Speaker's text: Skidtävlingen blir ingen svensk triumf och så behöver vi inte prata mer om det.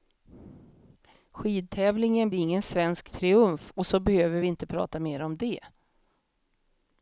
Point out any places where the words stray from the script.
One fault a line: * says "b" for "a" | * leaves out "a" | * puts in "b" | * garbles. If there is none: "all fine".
* leaves out "blir"